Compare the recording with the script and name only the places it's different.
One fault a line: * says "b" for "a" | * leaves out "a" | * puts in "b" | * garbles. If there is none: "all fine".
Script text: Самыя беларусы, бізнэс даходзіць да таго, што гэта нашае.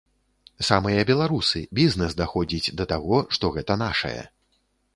all fine